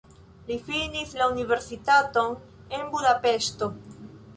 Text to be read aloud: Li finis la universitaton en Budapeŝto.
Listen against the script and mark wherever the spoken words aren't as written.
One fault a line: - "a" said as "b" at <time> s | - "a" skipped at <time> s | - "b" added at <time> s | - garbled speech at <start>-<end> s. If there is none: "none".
none